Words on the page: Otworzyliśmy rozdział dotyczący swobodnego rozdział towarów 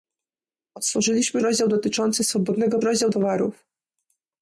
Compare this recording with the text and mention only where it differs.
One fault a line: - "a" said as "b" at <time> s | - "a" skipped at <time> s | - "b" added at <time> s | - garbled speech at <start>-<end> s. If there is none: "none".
none